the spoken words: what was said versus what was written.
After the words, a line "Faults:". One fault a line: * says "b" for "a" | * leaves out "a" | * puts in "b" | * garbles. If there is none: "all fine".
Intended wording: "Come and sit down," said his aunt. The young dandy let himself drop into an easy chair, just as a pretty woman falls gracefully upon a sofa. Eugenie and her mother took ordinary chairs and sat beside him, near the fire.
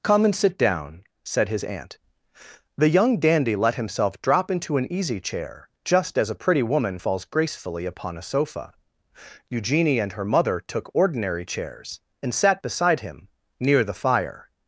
"Come and sit down," said his aunt. The young dandy let himself drop into an easy chair, just as a pretty woman falls gracefully upon a sofa. Eugenie and her mother took ordinary chairs and sat beside him, near the fire.
Faults:
all fine